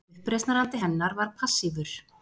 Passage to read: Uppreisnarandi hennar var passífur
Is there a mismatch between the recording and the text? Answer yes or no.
no